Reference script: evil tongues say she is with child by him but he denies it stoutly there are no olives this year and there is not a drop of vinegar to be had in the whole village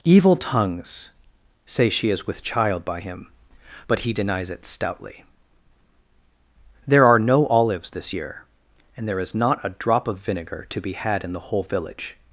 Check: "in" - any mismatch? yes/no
no